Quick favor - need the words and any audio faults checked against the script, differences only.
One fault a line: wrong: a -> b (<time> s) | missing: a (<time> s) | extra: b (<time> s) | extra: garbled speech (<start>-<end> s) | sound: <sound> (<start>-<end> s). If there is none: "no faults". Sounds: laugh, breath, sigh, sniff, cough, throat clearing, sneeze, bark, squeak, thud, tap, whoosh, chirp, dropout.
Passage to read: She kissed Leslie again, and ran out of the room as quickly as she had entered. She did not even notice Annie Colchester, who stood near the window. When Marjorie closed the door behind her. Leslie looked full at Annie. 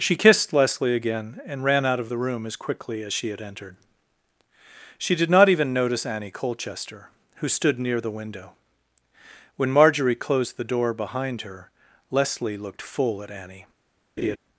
sound: laugh (14.2-14.4 s)